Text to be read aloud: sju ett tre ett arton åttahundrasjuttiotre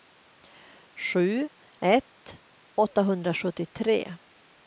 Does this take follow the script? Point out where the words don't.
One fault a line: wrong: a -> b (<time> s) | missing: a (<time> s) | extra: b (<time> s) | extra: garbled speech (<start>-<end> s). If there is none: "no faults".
missing: tre ett arton (2.4 s)